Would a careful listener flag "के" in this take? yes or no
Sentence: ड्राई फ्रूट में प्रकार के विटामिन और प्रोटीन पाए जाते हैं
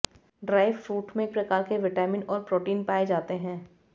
no